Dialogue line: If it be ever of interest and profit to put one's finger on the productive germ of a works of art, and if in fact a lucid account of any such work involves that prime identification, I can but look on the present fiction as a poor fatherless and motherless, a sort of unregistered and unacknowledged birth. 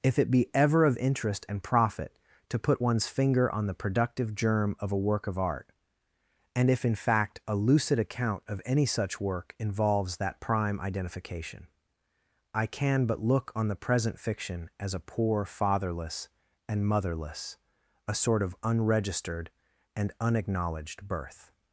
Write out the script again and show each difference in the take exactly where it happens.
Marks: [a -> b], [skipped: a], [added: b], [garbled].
If it be ever of interest and profit to put one's finger on the productive germ of a [works -> work] of art, and if in fact a lucid account of any such work involves that prime identification, I can but look on the present fiction as a poor fatherless and motherless, a sort of unregistered and unacknowledged birth.